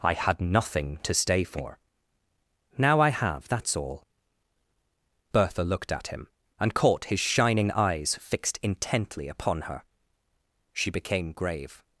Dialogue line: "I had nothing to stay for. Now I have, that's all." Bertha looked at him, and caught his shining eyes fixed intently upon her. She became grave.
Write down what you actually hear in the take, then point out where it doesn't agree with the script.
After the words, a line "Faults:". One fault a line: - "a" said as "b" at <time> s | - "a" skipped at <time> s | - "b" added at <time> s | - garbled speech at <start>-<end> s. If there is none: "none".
"I had nothing to stay for. Now I have, that's all." Bertha looked at him, and caught his shining eyes fixed intently upon her. She became grave.
Faults:
none